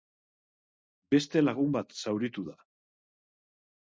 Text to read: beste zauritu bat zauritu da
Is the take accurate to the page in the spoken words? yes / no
no